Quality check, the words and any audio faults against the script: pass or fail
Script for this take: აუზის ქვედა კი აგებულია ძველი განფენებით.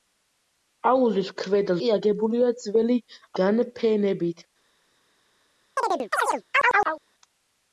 fail